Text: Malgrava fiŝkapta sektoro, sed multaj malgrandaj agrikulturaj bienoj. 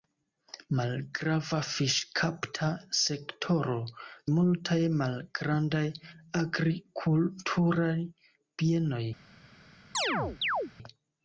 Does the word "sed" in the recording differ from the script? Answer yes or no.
yes